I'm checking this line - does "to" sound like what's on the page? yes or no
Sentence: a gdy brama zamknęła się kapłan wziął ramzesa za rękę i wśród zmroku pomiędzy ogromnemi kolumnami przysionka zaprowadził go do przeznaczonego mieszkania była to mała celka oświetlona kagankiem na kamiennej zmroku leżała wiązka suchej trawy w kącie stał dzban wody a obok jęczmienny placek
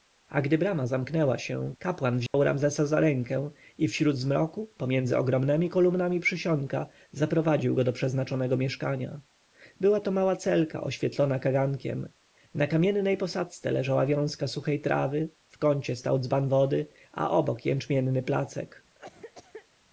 yes